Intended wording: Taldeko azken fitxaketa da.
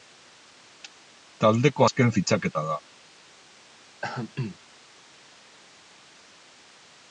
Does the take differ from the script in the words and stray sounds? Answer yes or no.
yes